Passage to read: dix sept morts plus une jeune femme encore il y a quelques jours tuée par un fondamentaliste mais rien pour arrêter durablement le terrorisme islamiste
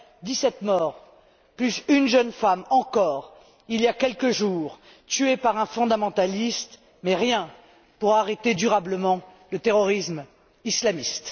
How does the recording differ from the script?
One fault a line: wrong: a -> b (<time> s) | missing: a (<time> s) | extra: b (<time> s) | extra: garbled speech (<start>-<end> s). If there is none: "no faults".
no faults